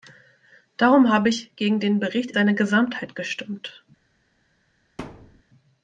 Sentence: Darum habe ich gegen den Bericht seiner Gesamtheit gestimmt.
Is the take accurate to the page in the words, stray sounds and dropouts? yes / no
no